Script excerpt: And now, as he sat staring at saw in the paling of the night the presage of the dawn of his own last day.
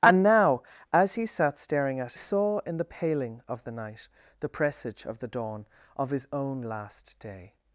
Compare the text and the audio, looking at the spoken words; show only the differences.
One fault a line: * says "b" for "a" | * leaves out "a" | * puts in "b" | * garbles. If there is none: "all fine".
all fine